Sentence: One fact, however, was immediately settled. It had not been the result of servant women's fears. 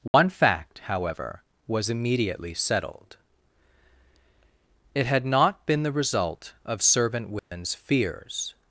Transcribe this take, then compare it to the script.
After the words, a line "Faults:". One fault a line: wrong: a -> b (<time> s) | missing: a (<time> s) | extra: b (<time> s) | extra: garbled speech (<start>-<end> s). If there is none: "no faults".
One fact, however, was immediately settled. It had not been the result of servant women's fears.
Faults:
no faults